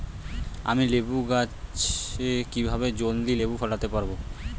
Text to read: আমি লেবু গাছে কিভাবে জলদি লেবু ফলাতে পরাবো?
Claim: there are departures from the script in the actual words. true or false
false